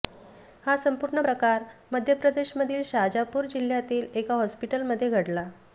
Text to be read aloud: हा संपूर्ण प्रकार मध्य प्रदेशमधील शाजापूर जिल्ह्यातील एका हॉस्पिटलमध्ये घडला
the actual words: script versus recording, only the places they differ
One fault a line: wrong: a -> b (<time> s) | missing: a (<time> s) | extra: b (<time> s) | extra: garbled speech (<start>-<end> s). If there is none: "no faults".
no faults